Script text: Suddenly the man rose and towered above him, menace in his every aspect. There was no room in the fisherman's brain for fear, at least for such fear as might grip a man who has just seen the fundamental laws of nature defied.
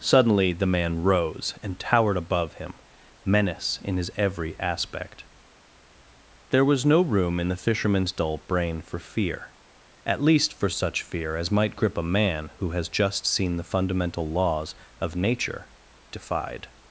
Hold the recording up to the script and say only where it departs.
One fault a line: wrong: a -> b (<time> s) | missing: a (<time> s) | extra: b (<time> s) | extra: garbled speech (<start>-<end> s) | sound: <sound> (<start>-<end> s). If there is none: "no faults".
extra: dull (8.1 s)